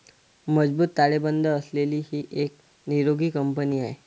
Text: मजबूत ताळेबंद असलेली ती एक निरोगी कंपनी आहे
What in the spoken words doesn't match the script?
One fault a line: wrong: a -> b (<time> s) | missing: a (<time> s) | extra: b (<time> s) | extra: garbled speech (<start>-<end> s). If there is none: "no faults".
wrong: ती -> ही (2.0 s)